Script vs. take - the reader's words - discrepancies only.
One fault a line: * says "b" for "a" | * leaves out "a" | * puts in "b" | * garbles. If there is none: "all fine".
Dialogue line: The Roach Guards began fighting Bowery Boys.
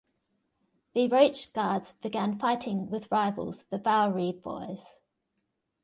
* puts in "with rivals the"